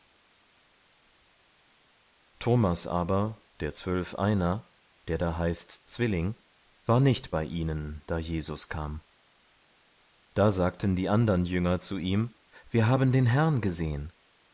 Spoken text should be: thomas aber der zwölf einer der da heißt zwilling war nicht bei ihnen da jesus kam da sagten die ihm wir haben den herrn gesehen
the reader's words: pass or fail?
fail